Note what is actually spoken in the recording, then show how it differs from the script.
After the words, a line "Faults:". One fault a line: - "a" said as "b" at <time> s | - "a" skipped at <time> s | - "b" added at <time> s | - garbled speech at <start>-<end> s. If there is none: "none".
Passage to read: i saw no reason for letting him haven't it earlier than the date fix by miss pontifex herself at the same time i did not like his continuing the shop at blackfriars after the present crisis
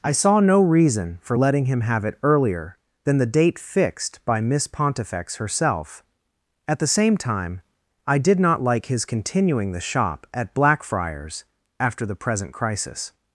i saw no reason for letting him have it earlier than the date fixed by miss pontifex herself at the same time i did not like his continuing the shop at blackfriars after the present crisis
Faults:
- "haven't" said as "have" at 1.8 s
- "fix" said as "fixed" at 3.6 s